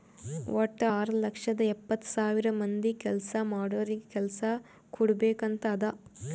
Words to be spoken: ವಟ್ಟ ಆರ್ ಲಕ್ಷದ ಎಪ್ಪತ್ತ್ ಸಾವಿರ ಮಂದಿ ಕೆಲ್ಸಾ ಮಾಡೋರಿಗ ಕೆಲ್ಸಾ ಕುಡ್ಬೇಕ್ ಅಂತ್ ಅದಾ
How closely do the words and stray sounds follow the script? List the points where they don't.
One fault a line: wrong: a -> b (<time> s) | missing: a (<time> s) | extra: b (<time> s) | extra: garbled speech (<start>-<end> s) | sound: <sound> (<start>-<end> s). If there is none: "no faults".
no faults